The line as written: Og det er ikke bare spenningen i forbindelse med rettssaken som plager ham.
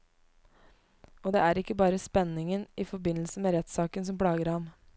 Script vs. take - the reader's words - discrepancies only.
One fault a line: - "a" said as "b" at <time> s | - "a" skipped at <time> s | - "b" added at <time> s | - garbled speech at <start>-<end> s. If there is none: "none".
none